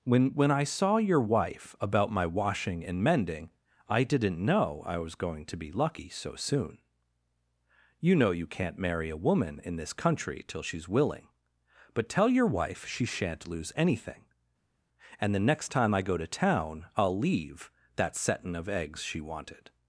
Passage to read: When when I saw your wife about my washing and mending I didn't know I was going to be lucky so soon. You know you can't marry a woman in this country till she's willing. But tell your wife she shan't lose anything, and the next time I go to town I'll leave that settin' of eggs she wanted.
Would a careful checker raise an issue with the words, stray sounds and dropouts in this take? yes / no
no